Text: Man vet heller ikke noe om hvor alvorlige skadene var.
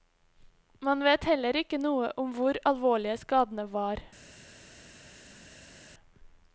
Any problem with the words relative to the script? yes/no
no